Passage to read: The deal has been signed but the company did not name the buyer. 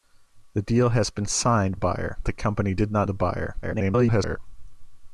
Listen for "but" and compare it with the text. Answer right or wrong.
wrong